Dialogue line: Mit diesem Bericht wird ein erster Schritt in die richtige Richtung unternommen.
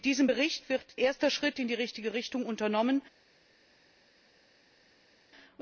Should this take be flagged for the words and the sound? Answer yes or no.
yes